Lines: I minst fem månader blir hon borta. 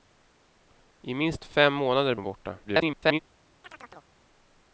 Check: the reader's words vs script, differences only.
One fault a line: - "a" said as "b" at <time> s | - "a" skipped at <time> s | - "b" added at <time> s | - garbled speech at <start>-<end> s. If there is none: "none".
- "blir" skipped at 2.1 s
- garbled speech at 2.6-3.2 s